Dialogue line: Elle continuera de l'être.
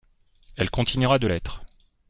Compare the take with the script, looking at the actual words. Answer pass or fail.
pass